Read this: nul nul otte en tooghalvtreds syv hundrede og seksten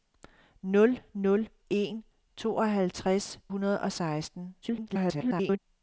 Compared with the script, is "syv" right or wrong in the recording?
wrong